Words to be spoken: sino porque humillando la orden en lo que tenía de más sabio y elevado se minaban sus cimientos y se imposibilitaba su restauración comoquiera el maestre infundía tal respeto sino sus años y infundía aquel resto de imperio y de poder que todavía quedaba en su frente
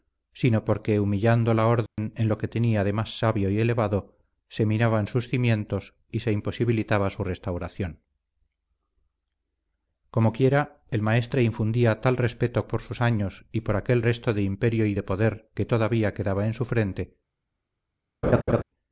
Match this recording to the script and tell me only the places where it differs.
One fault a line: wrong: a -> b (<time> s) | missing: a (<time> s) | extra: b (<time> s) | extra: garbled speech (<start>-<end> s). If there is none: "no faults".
wrong: sino -> por (12.7 s)
wrong: infundía -> por (13.6 s)